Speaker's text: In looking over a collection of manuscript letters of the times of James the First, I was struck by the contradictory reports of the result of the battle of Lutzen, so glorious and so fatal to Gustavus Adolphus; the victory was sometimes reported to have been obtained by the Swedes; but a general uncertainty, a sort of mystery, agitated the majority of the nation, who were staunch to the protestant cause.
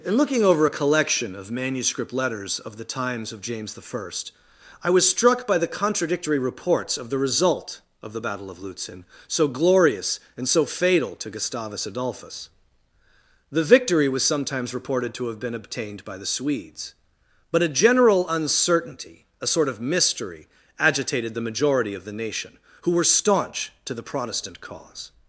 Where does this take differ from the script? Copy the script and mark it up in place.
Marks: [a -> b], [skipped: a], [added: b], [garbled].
In looking over a collection of manuscript letters of the times of James the First, I was struck by the contradictory reports of the result of the battle of Lutzen, so glorious and so fatal to Gustavus Adolphus; the victory was sometimes reported to have been obtained by the Swedes; but a general uncertainty, a sort of mystery, agitated the majority of the nation, who were staunch to the protestant cause.